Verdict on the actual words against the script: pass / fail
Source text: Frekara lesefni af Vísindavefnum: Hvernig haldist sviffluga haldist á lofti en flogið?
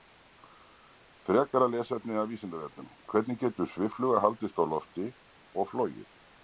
fail